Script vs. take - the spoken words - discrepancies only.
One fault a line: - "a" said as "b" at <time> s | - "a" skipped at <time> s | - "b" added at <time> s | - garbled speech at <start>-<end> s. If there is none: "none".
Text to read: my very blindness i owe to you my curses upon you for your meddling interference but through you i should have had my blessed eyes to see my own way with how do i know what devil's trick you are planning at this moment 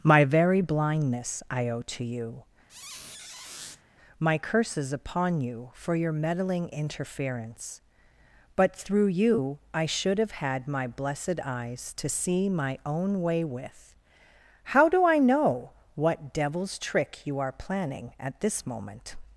none